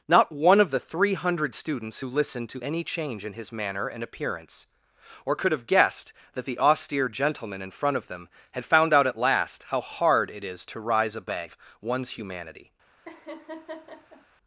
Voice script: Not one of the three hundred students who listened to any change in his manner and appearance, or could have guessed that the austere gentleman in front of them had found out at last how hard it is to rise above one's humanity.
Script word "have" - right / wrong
right